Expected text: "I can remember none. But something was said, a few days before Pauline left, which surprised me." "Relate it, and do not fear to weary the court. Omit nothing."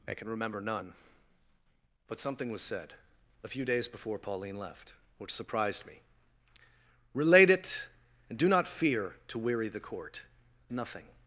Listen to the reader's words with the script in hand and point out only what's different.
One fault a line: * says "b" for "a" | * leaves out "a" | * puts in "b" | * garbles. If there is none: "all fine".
* leaves out "Omit"